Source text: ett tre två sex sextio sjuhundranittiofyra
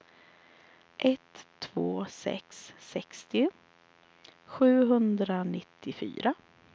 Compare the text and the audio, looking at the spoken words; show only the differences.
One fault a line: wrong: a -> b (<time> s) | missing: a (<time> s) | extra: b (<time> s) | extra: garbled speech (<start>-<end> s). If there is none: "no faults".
missing: tre (1.5 s)